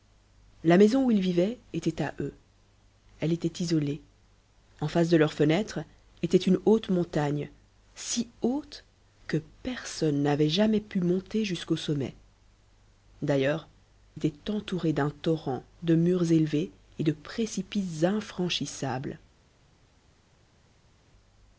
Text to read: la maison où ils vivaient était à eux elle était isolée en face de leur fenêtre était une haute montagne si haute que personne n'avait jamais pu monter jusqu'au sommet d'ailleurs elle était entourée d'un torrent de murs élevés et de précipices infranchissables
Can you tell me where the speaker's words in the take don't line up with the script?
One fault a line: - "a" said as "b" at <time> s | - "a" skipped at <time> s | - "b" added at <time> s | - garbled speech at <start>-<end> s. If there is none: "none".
- "elle" skipped at 13.7 s